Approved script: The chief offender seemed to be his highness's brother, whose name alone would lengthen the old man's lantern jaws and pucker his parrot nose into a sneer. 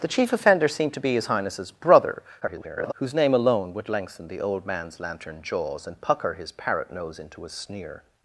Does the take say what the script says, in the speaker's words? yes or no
no